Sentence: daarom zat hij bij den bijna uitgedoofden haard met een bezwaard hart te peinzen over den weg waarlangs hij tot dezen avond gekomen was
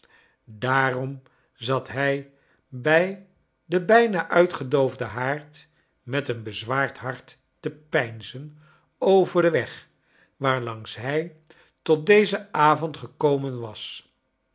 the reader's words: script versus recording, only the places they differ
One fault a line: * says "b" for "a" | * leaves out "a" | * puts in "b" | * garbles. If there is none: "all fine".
all fine